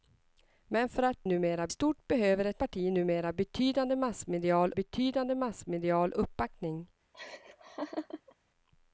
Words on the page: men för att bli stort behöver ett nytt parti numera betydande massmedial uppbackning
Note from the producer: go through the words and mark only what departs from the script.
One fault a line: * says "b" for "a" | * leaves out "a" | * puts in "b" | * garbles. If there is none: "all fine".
* says "numera" for "bli"
* leaves out "nytt"
* puts in "betydande massmedial"